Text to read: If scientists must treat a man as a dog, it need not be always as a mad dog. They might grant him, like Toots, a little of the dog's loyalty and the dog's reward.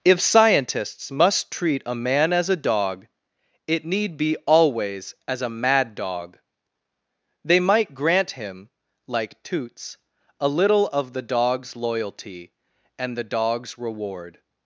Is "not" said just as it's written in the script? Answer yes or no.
no